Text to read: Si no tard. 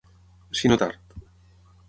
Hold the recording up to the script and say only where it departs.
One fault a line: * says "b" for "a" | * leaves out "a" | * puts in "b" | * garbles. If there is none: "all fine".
all fine